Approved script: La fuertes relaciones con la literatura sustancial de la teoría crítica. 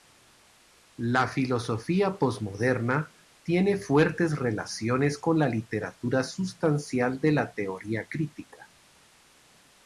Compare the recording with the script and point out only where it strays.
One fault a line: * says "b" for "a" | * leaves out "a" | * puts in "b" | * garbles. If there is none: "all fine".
* puts in "filosofía posmoderna tiene"